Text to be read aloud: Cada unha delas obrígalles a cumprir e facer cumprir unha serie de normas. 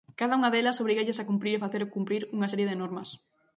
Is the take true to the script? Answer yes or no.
yes